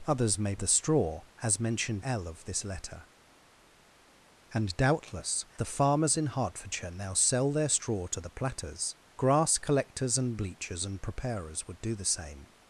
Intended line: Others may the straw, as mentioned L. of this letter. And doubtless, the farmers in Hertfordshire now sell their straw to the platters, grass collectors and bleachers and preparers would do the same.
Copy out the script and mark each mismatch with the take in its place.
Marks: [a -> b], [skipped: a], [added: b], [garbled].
Others may the straw, as mentioned L. of this letter. And doubtless, the farmers in Hertfordshire now sell their straw to the platters, grass collectors and bleachers and preparers would do the same.